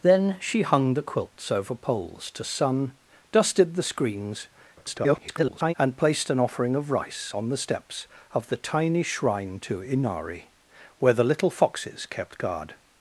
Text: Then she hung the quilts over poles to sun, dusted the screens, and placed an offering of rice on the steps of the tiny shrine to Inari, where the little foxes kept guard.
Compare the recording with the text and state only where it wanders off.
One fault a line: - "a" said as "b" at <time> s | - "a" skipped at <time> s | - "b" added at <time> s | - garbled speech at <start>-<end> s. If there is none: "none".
- garbled speech at 4.8-5.7 s